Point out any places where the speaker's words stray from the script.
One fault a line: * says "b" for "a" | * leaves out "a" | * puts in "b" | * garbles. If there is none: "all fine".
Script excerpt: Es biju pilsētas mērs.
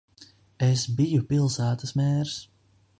all fine